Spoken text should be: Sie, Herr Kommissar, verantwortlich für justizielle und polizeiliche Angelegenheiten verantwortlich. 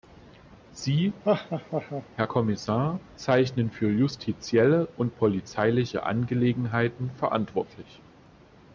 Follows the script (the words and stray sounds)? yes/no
no